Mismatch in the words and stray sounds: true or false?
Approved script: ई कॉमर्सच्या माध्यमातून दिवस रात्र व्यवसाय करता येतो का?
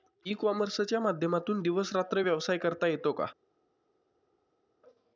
false